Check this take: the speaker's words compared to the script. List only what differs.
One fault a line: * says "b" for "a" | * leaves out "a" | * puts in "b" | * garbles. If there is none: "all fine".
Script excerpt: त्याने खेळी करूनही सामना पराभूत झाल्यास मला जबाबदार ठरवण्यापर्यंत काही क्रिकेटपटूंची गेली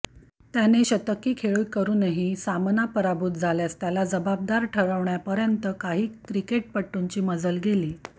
* puts in "शतकी"
* says "त्याला" for "मला"
* puts in "मजल"